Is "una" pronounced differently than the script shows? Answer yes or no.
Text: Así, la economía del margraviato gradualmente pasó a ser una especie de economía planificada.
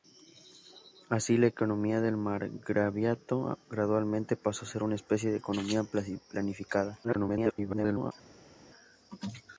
no